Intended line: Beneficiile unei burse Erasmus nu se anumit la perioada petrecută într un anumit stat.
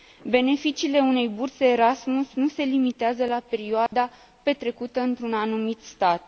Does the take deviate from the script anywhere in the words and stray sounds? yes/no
yes